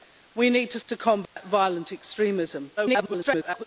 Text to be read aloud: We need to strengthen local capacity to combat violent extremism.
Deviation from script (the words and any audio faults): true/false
true